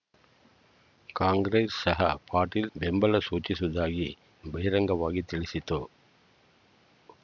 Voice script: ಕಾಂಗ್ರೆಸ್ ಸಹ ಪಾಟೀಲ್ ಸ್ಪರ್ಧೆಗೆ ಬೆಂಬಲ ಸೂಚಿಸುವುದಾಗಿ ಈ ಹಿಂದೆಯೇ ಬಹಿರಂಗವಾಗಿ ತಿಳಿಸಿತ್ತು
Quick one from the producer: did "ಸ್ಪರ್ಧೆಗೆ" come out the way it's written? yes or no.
no